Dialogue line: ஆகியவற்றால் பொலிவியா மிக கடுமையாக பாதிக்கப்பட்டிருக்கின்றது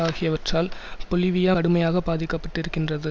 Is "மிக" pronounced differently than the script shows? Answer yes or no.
yes